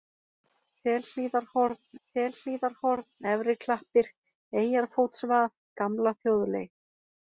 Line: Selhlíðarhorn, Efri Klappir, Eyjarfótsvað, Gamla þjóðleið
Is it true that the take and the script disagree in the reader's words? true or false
true